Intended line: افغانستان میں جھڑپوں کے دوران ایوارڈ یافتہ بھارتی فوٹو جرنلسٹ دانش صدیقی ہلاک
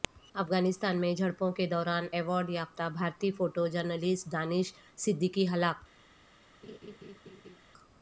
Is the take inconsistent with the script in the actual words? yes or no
no